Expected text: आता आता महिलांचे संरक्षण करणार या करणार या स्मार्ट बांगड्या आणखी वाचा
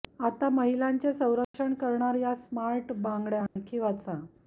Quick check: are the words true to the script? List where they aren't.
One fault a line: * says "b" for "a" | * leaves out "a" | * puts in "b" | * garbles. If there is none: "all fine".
* leaves out "आता"
* leaves out "करणार या"